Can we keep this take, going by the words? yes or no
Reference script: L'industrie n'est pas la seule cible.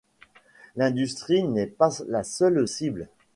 yes